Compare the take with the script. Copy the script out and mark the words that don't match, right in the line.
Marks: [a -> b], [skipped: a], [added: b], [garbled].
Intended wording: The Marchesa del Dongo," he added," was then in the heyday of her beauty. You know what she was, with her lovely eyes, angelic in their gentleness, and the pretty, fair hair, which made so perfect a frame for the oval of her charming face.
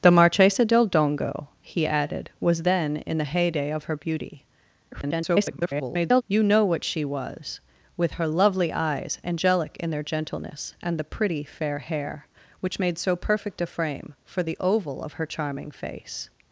The Marchesa del Dongo," he added," was then in the heyday of her beauty. [garbled] You know what she was, with her lovely eyes, angelic in their gentleness, and the pretty, fair hair, which made so perfect a frame for the oval of her charming face.